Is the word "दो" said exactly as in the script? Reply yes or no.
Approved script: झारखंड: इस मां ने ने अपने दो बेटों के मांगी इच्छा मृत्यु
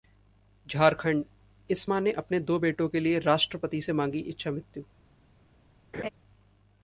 yes